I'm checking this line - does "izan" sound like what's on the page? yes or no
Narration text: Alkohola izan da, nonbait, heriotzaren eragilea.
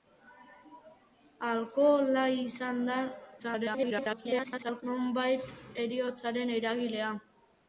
yes